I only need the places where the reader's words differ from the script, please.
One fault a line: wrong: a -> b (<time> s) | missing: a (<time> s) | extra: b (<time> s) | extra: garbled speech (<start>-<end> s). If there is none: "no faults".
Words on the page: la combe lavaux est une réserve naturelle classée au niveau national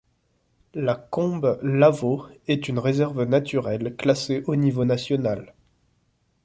no faults